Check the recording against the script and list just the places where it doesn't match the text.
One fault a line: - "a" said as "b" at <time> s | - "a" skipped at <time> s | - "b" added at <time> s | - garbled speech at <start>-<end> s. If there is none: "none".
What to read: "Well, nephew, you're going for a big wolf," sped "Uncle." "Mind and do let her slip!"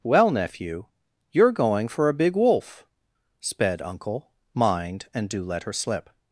none